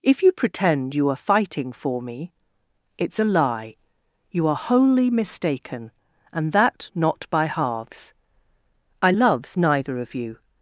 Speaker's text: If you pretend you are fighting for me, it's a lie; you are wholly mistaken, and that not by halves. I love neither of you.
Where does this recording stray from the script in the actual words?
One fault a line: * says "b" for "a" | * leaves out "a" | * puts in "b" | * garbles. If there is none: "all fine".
* says "loves" for "love"